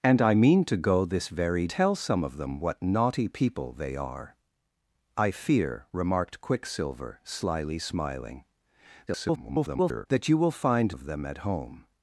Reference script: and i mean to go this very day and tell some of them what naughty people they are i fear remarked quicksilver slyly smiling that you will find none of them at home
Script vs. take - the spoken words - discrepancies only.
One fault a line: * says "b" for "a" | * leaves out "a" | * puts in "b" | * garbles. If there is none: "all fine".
* leaves out "day and"
* garbles
* leaves out "none"